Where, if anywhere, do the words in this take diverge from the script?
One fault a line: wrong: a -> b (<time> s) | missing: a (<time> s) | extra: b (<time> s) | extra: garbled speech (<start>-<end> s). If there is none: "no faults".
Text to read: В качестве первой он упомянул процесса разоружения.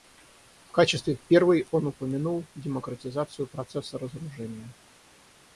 extra: демократизацию (2.5 s)